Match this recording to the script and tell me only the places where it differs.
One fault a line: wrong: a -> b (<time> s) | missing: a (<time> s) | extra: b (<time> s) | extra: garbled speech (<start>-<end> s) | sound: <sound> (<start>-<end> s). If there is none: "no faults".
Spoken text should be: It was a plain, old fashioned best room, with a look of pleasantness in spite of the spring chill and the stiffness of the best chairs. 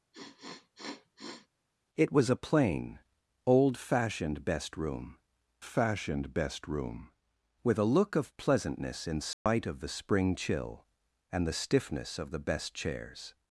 sound: sniff (0.1-1.5 s)
extra: fashioned best room (5.6 s)
sound: dropout (9.3-9.5 s)